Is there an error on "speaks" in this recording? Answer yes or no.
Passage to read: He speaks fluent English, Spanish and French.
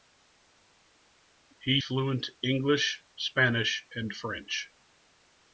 yes